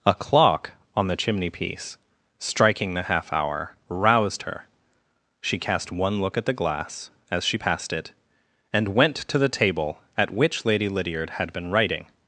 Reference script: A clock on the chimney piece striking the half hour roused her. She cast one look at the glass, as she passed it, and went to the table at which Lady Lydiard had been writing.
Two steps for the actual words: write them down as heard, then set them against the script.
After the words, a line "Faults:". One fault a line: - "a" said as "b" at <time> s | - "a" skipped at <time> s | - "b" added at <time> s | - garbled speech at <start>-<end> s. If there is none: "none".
A clock on the chimney piece striking the half hour roused her. She cast one look at the glass, as she passed it, and went to the table at which Lady Lydiard had been writing.
Faults:
none